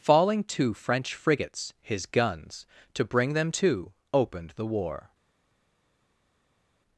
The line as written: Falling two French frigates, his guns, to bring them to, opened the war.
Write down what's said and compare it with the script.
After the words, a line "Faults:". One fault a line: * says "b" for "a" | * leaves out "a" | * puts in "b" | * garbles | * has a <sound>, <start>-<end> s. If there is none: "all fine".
Falling two French frigates, his guns, to bring them to, opened the war.
Faults:
all fine